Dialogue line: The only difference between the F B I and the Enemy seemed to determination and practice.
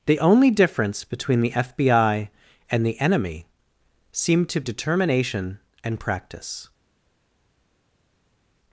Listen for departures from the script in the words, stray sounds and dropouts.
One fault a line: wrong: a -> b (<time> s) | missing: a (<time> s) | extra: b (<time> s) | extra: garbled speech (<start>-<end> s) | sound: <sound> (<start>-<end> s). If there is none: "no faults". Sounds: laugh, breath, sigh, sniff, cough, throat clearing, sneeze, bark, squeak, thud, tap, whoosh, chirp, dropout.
no faults